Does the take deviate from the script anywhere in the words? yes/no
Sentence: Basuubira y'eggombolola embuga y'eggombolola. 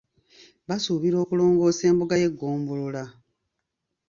yes